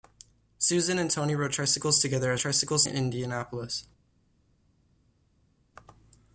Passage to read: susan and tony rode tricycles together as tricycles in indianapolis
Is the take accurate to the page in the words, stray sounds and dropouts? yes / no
yes